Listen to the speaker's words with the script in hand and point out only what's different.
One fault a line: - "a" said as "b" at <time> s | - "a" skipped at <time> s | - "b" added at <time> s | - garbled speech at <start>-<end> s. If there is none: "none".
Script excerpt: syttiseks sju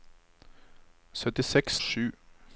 none